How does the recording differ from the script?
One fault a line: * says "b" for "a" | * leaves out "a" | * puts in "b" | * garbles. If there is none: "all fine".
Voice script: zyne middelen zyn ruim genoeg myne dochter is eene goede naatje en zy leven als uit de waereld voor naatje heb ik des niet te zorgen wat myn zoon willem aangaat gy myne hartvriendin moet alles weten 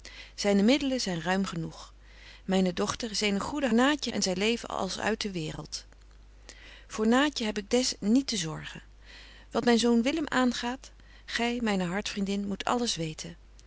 all fine